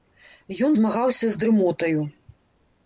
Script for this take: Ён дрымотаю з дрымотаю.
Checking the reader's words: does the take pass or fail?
fail